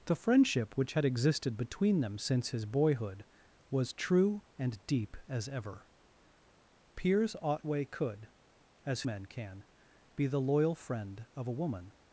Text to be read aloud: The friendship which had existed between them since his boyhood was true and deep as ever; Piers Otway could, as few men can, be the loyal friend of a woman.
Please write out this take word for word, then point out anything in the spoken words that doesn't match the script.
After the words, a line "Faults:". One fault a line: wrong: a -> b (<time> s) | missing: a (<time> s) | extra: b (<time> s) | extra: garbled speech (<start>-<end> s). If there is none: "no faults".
The friendship which had existed between them since his boyhood was true and deep as ever; Piers Otway could, as men can, be the loyal friend of a woman.
Faults:
missing: few (9.0 s)